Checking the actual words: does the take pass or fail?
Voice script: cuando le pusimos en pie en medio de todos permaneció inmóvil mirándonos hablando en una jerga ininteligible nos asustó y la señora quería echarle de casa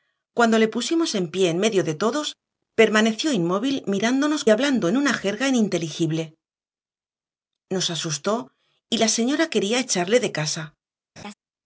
pass